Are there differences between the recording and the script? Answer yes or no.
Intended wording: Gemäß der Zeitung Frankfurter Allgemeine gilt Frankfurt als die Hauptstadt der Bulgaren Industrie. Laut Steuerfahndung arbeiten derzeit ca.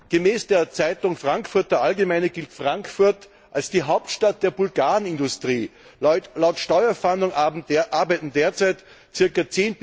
no